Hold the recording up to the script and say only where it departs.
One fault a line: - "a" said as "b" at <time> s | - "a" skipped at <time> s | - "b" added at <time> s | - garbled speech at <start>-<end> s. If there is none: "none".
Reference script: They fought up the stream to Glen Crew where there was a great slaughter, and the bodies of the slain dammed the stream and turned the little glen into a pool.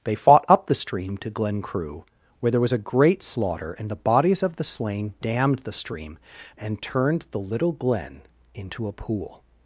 none